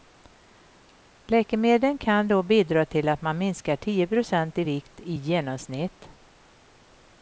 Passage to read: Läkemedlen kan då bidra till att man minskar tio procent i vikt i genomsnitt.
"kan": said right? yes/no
yes